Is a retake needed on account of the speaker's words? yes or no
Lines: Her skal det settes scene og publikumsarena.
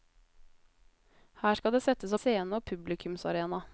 no